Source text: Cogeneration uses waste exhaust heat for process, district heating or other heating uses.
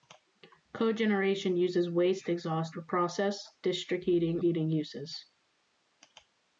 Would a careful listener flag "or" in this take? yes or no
yes